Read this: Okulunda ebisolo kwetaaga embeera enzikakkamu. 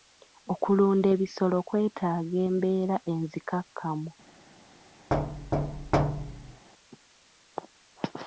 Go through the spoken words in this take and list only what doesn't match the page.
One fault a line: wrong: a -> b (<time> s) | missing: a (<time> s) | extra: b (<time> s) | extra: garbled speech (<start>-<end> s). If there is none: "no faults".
no faults